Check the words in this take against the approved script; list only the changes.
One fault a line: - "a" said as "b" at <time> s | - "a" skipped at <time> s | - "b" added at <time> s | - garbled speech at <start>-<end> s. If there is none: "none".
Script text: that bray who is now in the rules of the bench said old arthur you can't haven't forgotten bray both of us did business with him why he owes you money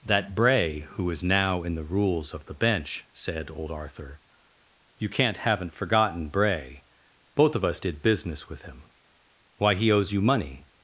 none